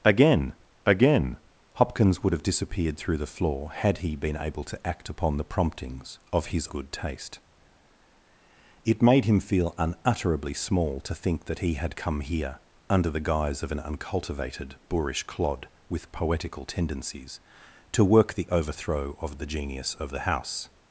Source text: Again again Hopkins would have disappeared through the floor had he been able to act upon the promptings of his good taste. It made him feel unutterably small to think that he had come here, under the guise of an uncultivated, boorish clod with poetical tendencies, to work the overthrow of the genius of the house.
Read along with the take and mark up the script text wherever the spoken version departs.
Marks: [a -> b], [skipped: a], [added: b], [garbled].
Again again Hopkins would have disappeared through the floor had he been able to act upon the promptings of his good taste. It made him feel unutterably small to think that he had come here, under the guise of an uncultivated, boorish clod with poetical tendencies, to work the overthrow of the genius of the house.